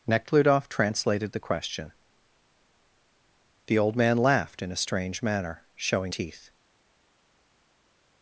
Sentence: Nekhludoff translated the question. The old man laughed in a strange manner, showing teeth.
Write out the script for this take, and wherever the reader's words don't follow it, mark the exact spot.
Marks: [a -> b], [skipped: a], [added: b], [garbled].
Nekhludoff translated the question. The old man laughed in a strange manner, showing teeth.